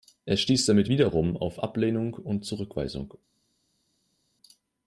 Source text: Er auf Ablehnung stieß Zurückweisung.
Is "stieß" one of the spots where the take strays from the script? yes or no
yes